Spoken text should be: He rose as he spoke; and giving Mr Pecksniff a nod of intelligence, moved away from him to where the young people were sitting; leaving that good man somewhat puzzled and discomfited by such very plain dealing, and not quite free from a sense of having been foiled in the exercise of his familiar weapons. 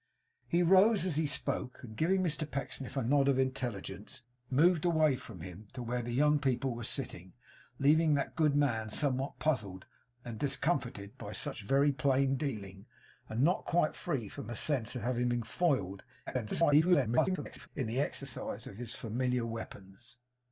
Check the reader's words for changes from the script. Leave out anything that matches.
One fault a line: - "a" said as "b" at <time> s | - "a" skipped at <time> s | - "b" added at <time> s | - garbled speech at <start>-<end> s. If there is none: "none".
- garbled speech at 16.3-17.7 s